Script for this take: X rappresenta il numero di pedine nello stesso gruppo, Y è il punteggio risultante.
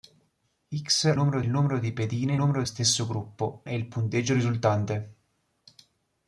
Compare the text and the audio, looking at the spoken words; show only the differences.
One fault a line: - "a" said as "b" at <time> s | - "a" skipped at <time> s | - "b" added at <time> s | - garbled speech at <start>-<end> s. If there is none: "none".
- "rappresenta" said as "numero" at 1.1 s
- "nello" said as "numero" at 2.3 s
- "Y" skipped at 3.7 s